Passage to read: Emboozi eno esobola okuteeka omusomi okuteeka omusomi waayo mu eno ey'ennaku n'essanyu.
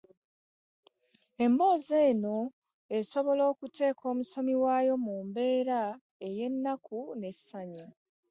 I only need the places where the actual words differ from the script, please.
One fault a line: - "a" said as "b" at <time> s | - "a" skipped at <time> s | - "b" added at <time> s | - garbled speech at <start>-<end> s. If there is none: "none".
- "okuteeka omusomi" skipped at 4.5 s
- "eno" said as "mbeera" at 5.3 s